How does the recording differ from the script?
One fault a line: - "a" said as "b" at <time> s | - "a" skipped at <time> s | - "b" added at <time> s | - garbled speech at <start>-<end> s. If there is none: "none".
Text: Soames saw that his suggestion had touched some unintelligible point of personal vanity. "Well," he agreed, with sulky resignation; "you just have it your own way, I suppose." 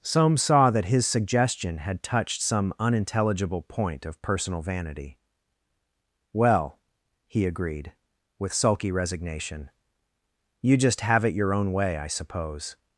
none